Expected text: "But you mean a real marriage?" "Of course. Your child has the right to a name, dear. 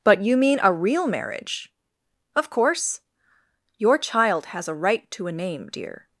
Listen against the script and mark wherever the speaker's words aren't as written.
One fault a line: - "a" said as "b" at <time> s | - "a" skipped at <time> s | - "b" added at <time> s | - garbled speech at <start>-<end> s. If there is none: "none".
- "the" said as "a" at 4.7 s